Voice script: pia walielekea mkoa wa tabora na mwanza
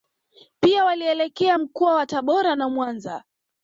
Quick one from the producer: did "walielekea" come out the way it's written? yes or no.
yes